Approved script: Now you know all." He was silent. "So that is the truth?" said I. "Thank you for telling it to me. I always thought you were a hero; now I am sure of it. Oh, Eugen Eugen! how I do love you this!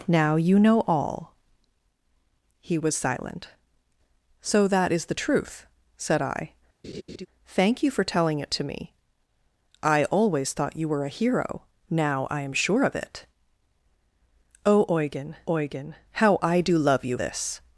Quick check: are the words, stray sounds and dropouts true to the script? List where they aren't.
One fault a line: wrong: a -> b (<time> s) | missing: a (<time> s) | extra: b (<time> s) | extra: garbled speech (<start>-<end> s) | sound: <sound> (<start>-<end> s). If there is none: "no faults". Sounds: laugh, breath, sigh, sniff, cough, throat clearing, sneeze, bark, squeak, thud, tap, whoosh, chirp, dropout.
sound: laugh (6.8-7.3 s)